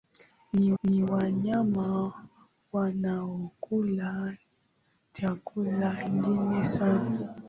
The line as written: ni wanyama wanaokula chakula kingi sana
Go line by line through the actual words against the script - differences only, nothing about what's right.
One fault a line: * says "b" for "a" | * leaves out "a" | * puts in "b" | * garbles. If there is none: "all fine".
* puts in "ni"